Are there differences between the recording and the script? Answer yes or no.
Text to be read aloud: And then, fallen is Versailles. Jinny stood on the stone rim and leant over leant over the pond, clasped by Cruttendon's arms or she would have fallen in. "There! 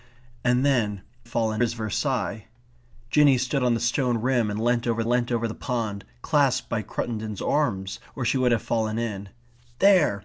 no